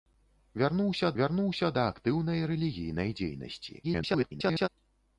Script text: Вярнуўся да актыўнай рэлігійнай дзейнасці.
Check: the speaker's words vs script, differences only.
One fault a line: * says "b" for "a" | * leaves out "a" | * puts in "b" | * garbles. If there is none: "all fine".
* puts in "вярнуўся"
* garbles